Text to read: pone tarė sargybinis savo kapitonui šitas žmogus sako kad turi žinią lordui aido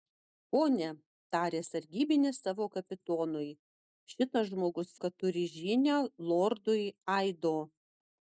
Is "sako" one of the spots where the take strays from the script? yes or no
yes